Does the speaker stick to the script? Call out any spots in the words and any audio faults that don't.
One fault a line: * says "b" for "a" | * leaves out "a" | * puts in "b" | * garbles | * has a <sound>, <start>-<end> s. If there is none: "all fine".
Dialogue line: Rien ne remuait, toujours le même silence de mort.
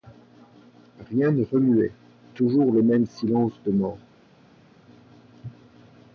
all fine